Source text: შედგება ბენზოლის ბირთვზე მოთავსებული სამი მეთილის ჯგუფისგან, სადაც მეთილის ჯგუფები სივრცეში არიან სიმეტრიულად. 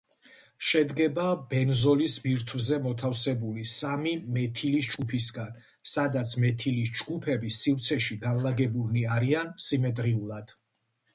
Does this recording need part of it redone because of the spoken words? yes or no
yes